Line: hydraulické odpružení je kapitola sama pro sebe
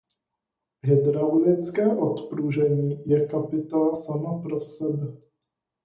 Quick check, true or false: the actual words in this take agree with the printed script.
true